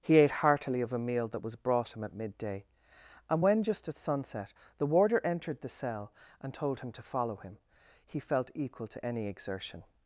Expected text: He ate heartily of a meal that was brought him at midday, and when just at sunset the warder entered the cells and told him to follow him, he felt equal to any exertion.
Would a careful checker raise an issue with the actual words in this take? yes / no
yes